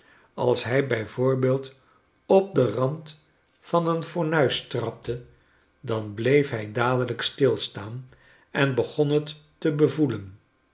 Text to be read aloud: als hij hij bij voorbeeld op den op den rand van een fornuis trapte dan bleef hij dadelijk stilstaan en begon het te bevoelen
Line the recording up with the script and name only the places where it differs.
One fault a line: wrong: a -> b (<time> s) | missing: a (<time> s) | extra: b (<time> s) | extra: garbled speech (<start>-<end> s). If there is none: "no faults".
missing: hij (0.9 s)
missing: op den (2.7 s)